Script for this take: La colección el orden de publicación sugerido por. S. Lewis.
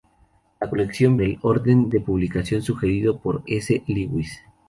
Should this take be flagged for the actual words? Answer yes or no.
no